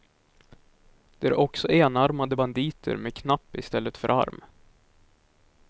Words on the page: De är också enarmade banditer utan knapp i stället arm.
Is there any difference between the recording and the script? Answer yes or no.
yes